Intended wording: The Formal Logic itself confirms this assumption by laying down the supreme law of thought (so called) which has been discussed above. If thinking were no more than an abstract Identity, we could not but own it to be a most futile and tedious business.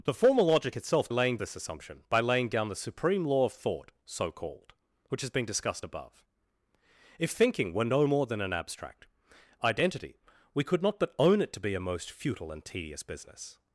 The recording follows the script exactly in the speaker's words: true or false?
false